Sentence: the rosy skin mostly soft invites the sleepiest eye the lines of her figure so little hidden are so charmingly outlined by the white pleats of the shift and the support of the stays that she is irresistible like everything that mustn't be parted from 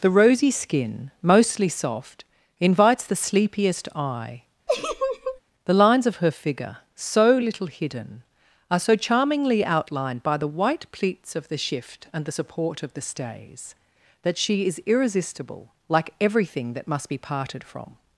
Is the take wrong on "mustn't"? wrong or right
wrong